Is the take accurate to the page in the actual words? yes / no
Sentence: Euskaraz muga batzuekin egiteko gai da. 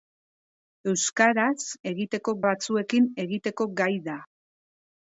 no